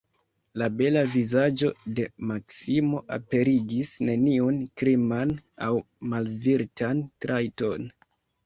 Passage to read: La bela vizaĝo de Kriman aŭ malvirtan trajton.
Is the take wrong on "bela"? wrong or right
right